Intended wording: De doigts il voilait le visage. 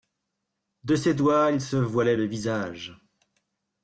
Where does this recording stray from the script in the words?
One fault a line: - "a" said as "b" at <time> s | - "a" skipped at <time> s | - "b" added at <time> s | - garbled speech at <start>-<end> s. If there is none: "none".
- "ses" added at 0.9 s
- "se" added at 1.6 s